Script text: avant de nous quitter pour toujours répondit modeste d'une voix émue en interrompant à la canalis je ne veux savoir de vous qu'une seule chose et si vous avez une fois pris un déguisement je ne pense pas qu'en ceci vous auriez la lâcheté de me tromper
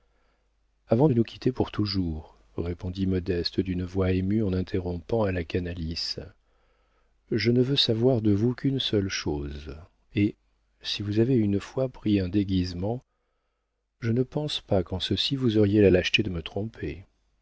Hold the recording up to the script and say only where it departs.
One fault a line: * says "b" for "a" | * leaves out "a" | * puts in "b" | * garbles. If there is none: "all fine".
all fine